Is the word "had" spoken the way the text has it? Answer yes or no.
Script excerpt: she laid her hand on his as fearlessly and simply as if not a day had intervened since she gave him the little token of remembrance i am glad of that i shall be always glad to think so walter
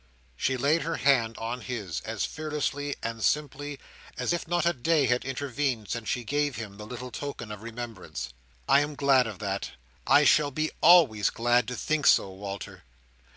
yes